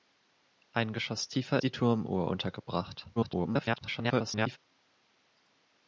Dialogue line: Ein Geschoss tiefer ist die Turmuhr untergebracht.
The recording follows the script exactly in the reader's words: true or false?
false